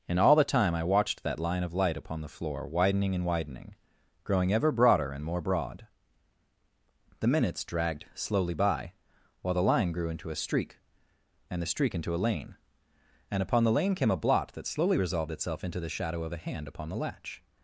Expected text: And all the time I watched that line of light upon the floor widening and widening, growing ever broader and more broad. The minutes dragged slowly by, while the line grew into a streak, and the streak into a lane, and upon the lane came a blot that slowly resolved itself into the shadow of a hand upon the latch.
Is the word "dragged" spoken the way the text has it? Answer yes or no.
yes